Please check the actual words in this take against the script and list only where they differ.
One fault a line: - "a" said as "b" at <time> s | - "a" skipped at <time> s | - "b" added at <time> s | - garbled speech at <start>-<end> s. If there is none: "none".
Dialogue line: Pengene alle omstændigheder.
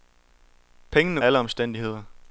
none